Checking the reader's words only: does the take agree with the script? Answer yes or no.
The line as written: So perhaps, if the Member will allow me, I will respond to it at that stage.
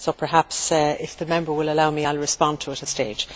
no